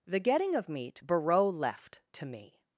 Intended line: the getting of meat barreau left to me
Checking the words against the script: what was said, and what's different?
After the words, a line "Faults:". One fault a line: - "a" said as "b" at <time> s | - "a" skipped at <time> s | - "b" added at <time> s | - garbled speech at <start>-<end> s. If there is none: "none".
the getting of meat barreau left to me
Faults:
none